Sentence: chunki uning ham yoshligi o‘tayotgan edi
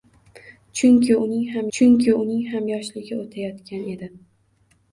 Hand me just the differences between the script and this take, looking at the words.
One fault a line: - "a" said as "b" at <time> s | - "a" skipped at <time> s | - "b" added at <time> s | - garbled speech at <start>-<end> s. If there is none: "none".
- "chunki uning ham" added at 1.8 s